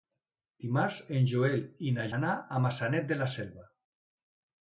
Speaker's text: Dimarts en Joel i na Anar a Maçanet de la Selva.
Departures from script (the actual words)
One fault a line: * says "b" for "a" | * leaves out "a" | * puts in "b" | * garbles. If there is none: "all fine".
all fine